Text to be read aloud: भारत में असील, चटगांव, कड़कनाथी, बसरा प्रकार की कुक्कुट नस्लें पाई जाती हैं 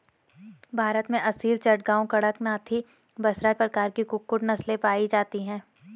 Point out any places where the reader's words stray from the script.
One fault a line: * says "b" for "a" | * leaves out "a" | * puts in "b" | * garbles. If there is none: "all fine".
all fine